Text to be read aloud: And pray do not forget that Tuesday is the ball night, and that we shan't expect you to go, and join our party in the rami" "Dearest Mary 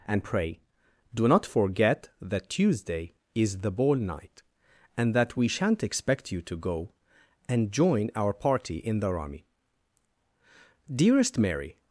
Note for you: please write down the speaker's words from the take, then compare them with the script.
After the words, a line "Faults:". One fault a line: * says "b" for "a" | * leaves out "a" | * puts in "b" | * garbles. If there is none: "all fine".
And pray do not forget that Tuesday is the ball night, and that we shan't expect you to go, and join our party in the rami" "Dearest Mary
Faults:
all fine